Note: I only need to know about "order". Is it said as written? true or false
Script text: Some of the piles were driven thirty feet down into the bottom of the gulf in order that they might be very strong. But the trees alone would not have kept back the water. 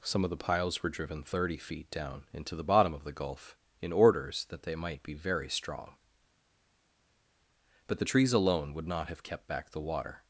false